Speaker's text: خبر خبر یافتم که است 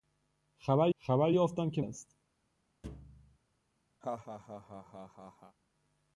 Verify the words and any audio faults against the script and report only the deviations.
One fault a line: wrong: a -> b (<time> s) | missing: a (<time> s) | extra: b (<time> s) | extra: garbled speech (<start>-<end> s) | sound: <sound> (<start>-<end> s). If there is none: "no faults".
sound: thud (2.8-3.4 s)
sound: laugh (4.0-5.6 s)